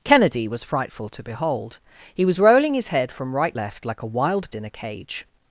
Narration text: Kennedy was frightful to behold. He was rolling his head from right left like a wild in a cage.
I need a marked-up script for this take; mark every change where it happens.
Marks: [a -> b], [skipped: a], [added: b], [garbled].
Kennedy was frightful to behold. He was rolling his head from right left like a wild in a cage.